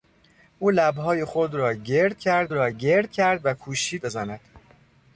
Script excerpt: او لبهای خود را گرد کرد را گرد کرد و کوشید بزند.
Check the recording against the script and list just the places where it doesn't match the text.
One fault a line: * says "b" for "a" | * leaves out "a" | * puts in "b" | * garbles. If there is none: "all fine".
all fine